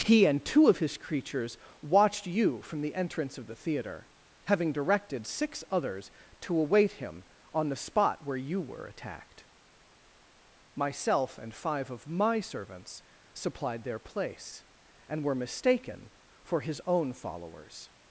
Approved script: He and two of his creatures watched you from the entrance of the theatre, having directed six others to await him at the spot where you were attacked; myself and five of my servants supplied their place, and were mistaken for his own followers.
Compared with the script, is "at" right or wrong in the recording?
wrong